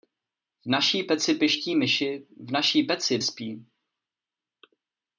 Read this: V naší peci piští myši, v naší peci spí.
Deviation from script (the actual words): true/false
false